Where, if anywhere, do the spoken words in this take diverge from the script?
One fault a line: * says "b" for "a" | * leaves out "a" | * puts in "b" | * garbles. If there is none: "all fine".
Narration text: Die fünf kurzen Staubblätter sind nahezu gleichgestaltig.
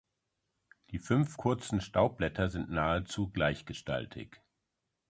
all fine